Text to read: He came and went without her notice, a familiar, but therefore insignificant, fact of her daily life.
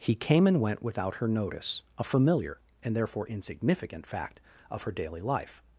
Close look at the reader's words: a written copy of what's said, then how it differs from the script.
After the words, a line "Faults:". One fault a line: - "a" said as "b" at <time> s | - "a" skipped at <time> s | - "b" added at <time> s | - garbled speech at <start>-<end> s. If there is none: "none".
He came and went without her notice, a familiar, and therefore insignificant, fact of her daily life.
Faults:
- "but" said as "and" at 2.8 s